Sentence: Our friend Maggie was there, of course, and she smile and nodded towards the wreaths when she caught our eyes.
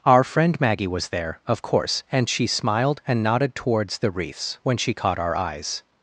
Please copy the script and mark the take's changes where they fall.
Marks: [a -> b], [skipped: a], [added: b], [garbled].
Our friend Maggie was there, of course, and she [smile -> smiled] and nodded towards the wreaths when she caught our eyes.